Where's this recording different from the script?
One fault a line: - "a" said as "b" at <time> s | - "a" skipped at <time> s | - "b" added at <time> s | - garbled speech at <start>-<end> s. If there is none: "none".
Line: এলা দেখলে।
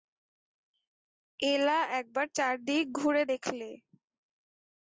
- "একবার চারিদিক ঘুরে" added at 2.0 s